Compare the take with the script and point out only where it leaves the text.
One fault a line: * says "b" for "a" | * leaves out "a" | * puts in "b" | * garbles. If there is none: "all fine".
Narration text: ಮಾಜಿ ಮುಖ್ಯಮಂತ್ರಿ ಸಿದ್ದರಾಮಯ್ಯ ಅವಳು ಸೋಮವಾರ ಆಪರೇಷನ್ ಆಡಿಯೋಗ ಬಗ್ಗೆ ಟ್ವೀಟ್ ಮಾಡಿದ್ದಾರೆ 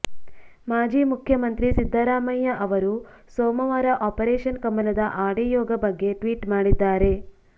* says "ಅವರು" for "ಅವಳು"
* puts in "ಕಮಲದ"